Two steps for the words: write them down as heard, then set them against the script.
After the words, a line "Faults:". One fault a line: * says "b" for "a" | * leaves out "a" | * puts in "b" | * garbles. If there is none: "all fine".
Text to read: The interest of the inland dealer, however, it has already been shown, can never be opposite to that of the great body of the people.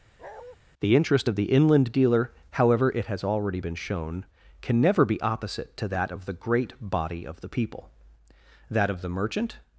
The interest of the inland dealer, however, it has already been shown, can never be opposite to that of the great body of the people. That of the merchant
Faults:
* puts in "That of the merchant"